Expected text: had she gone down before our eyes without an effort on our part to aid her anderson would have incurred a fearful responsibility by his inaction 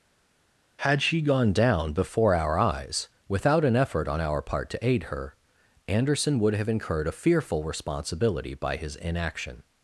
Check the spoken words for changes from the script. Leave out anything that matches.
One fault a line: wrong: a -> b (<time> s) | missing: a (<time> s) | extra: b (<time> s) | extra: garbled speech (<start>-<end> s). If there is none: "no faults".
no faults